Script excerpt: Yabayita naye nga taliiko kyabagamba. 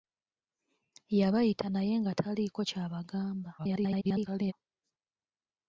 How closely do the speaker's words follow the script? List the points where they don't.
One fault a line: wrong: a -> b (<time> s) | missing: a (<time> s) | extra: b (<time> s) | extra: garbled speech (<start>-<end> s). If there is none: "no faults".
extra: garbled speech (3.6-4.5 s)